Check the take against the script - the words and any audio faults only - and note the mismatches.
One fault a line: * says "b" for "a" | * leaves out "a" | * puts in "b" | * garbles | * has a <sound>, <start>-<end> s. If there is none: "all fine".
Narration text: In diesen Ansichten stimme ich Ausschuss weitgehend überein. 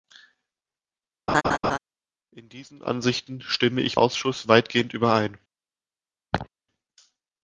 * has a laugh, 1.3-1.8 s
* has a laugh, 6.3-6.5 s